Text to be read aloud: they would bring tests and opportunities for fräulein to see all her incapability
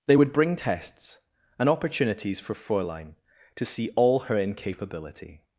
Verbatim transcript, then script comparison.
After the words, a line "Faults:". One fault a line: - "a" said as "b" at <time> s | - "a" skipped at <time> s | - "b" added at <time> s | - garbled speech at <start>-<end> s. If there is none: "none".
they would bring tests and opportunities for fräulein to see all her incapability
Faults:
none